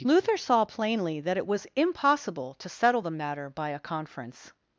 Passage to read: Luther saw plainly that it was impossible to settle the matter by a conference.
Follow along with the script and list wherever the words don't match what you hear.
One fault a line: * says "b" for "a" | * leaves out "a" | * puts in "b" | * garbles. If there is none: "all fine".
all fine